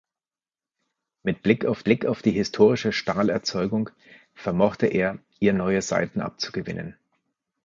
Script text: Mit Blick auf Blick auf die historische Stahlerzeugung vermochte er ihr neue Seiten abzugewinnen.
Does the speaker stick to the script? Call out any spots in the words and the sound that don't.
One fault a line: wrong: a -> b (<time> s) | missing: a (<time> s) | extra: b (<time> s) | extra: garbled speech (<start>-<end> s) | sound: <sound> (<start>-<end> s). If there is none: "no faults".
no faults